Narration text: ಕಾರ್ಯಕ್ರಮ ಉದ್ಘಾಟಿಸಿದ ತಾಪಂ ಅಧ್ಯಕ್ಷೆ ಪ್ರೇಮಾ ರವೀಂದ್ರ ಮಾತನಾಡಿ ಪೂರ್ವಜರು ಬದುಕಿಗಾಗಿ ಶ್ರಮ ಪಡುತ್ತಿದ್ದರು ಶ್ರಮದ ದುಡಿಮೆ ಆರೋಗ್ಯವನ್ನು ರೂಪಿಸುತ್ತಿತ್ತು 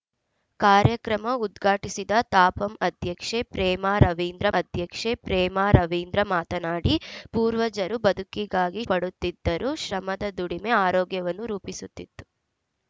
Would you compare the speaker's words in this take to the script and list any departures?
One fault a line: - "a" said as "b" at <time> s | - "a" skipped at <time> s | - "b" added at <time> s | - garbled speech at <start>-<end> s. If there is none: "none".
- "ಅಧ್ಯಕ್ಷೆ ಪ್ರೇಮಾ ರವೀಂದ್ರ" added at 4.5 s
- "ಶ್ರಮ" skipped at 8.8 s